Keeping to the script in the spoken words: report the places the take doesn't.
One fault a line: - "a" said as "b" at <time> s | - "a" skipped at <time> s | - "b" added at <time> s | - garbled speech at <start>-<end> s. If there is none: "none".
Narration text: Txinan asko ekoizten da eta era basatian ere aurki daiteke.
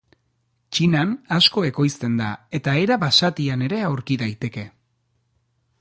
none